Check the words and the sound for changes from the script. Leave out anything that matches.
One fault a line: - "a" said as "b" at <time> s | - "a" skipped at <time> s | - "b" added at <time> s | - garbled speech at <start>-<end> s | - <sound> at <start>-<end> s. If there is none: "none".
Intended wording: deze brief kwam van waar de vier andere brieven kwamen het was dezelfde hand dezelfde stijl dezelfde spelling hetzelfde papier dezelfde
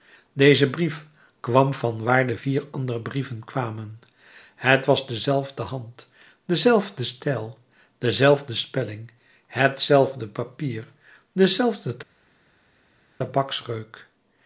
none